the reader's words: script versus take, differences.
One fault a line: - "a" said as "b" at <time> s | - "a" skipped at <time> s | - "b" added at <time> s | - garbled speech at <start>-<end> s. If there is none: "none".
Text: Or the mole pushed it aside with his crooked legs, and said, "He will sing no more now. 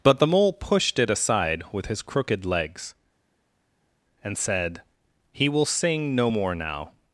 - "Or" said as "But" at 0.0 s